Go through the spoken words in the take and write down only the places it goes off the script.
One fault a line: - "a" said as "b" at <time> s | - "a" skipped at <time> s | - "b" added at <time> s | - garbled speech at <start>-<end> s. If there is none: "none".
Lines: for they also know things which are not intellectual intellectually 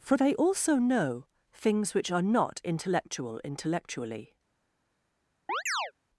none